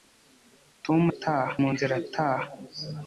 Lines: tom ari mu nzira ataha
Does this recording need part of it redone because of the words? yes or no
yes